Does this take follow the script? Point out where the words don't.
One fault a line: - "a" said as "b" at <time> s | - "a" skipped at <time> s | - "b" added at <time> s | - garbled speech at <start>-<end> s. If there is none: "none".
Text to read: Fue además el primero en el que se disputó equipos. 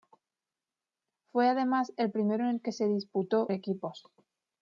none